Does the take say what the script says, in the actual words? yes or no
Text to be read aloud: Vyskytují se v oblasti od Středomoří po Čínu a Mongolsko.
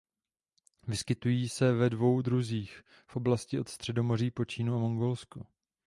no